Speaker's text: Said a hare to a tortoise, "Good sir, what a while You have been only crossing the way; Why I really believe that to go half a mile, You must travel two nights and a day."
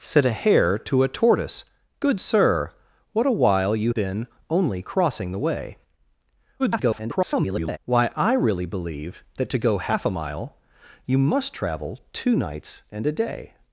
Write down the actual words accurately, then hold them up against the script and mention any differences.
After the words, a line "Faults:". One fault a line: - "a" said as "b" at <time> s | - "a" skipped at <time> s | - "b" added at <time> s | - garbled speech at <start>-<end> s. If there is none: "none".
Said a hare to a tortoise, "Good sir, what a while You been only crossing the way; [garbled] Why I really believe that to go half a mile, You must travel two nights and a day."
Faults:
- "have" skipped at 3.9 s
- garbled speech at 6.6-7.8 s